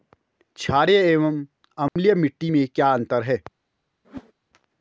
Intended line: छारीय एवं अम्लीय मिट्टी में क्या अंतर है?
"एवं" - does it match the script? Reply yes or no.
yes